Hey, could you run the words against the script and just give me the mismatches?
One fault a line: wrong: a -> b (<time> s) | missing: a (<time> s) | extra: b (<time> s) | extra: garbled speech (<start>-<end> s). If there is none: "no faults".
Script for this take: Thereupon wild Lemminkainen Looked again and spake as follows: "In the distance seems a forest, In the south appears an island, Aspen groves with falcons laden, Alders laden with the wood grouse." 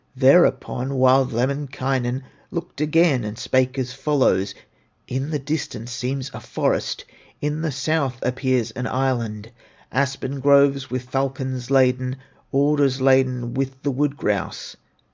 no faults